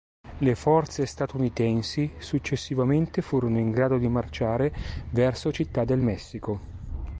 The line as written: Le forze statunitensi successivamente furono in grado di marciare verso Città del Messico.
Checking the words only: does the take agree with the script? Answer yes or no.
yes